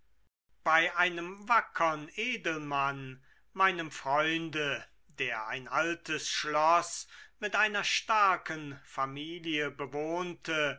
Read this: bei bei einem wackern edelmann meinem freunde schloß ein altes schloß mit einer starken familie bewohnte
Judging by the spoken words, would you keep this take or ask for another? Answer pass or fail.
fail